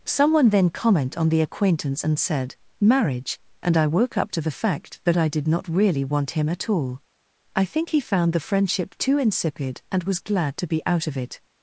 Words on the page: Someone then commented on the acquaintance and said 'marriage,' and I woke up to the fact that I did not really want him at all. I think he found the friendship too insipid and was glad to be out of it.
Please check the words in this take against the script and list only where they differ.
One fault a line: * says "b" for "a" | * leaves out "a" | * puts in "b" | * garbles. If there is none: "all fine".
* says "comment" for "commented"